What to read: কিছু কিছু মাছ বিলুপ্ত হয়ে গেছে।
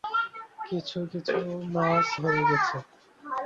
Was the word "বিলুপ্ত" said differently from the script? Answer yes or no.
yes